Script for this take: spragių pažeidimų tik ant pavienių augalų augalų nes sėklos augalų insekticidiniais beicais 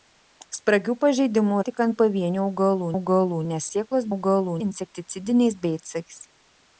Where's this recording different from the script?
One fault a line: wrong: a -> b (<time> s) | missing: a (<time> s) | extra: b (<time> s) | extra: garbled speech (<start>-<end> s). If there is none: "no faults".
no faults